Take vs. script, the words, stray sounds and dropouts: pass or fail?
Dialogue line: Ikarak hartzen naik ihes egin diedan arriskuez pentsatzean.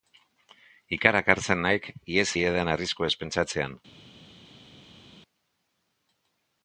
fail